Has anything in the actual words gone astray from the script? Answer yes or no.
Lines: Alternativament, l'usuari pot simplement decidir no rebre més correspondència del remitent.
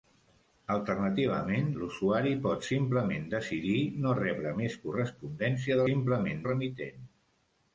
yes